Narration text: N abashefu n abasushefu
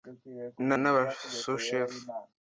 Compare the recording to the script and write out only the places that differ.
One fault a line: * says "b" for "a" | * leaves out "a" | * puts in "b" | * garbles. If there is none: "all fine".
* leaves out "abashefu"